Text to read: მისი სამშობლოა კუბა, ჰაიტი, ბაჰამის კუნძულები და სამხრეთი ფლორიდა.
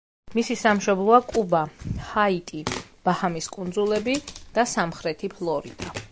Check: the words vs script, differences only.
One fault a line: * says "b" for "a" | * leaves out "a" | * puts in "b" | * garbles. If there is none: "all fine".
all fine